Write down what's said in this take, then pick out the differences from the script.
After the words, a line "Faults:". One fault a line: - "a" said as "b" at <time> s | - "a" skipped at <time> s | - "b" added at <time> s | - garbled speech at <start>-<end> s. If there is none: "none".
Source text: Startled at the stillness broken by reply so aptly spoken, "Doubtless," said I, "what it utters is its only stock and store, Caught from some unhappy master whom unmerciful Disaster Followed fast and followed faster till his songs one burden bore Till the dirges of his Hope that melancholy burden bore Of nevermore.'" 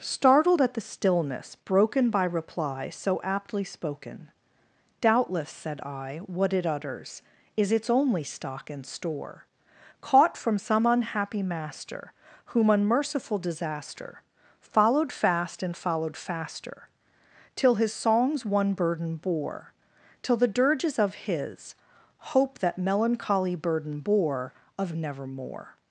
Startled at the stillness broken by reply so aptly spoken, "Doubtless," said I, "what it utters is its only stock and store, Caught from some unhappy master whom unmerciful Disaster Followed fast and followed faster till his songs one burden bore Till the dirges of his Hope that melancholy burden bore Of nevermore.'"
Faults:
none